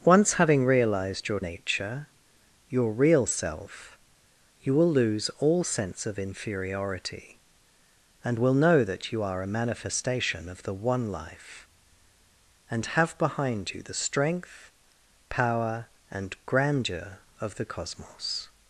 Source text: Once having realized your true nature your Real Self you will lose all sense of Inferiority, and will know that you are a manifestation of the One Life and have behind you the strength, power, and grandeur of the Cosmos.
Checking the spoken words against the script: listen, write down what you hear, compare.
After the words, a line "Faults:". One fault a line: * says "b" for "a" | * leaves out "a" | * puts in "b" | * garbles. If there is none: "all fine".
Once having realized your nature your Real Self you will lose all sense of Inferiority, and will know that you are a manifestation of the One Life and have behind you the strength, power, and grandeur of the Cosmos.
Faults:
* leaves out "true"